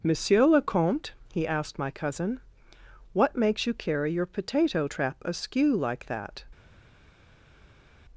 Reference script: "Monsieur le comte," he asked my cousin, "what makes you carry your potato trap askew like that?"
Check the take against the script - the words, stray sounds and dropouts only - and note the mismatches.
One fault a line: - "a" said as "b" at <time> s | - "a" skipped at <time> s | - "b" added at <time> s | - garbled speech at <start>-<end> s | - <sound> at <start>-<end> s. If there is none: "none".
none